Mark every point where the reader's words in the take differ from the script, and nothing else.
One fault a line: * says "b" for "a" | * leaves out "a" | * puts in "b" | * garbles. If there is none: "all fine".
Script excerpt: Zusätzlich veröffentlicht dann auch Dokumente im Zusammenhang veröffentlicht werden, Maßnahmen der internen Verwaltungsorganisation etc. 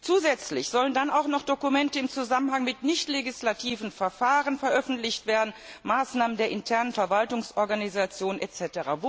* says "sollen" for "veröffentlicht"
* puts in "noch"
* puts in "mit nichtlegislativen Verfahren"